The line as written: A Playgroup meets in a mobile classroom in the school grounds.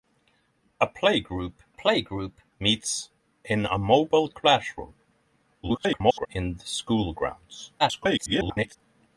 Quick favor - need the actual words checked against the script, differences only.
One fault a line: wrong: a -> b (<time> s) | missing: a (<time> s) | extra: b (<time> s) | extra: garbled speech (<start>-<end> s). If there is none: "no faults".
extra: Playgroup (1.7 s)
extra: garbled speech (5.6-6.3 s)
extra: garbled speech (7.8-8.8 s)